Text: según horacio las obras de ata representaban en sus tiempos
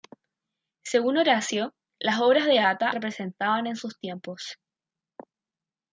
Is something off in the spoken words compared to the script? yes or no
no